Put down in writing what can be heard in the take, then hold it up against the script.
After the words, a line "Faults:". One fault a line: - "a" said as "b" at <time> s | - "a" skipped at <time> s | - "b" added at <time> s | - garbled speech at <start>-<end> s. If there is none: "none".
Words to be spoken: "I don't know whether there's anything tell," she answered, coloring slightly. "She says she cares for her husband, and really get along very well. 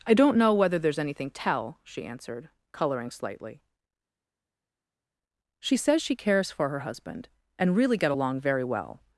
"I don't know whether there's anything tell," she answered, coloring slightly. "She says she cares for her husband, and really get along very well.
Faults:
none